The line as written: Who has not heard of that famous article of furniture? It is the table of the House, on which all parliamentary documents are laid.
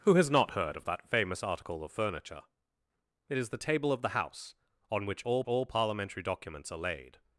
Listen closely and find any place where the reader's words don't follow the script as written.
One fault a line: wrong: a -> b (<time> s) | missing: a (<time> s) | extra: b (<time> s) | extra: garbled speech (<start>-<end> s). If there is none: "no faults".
extra: all (5.4 s)